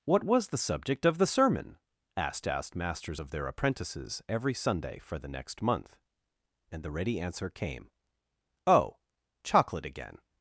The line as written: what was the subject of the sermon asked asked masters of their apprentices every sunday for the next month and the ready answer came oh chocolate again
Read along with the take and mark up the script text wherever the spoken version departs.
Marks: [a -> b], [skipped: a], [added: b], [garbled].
what was the subject of the sermon asked asked masters of their apprentices every sunday for the next month and the ready answer came oh chocolate again